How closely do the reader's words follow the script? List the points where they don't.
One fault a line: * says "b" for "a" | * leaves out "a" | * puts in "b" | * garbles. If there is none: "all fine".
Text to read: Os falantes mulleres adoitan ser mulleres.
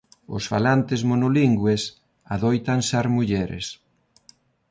* says "monolingües" for "mulleres"